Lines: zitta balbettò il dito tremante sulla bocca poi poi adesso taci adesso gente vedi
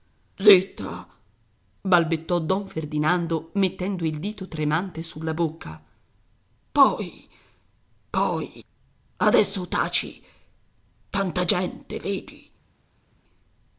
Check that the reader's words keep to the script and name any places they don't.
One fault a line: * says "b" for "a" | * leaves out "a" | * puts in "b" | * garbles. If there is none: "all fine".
* puts in "don ferdinando mettendo"
* says "tanta" for "adesso"